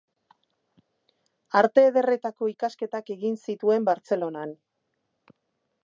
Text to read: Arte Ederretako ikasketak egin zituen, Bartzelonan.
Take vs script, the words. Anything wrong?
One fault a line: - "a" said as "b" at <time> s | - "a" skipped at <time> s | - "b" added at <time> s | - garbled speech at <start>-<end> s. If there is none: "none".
none